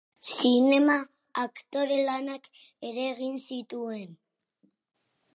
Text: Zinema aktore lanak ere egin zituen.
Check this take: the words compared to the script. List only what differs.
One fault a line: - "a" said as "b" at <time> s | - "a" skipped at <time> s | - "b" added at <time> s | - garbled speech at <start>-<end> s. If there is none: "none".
none